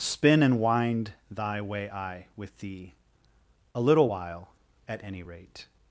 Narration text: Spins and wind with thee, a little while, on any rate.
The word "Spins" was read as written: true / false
false